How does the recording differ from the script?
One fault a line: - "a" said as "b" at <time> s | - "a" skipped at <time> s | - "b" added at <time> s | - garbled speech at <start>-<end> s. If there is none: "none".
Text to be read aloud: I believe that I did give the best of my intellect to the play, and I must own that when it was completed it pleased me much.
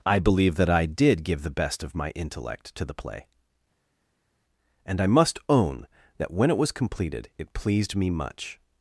none